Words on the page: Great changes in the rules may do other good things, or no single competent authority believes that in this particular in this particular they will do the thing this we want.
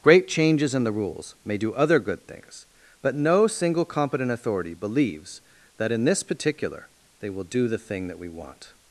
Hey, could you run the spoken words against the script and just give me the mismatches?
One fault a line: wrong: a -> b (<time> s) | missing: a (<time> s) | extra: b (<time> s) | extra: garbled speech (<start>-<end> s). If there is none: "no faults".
wrong: or -> but (3.0 s)
missing: in this particular (6.9 s)
wrong: this -> that (8.1 s)